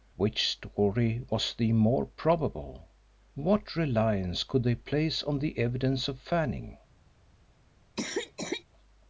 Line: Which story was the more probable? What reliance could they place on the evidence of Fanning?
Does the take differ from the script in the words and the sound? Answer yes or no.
yes